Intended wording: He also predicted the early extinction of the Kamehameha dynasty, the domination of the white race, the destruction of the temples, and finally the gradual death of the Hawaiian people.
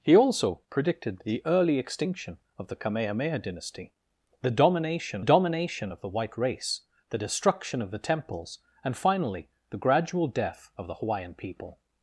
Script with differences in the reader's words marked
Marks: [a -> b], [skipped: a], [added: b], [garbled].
He also predicted the early extinction of the Kamehameha dynasty, the domination [added: domination] of the white race, the destruction of the temples, and finally the gradual death of the Hawaiian people.